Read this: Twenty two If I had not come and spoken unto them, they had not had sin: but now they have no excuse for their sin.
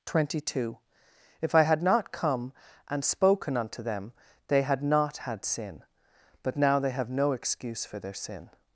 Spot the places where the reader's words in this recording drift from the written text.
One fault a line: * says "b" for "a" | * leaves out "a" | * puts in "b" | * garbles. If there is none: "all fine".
all fine